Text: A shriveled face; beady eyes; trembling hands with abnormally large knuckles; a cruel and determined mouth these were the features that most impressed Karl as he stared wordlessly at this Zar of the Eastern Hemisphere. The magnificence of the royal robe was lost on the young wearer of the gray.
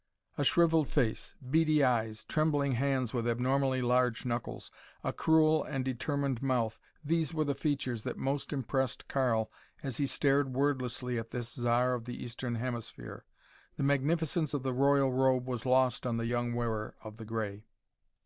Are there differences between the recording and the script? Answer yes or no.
no